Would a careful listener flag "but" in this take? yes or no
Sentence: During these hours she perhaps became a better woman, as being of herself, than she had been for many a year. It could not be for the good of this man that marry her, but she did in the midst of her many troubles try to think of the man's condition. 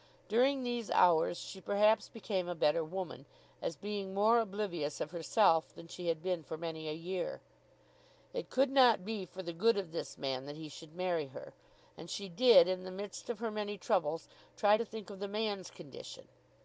yes